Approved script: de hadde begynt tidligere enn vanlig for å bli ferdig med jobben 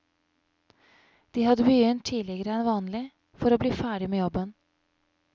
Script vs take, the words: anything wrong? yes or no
no